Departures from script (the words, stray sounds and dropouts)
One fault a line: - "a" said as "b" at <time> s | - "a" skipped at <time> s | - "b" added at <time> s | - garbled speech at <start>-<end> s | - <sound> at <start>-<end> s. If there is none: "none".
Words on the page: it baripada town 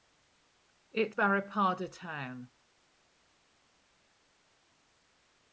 none